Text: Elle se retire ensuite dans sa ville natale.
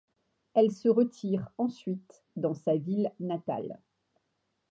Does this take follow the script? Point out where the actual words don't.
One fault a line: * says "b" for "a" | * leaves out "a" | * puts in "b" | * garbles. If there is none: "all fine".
all fine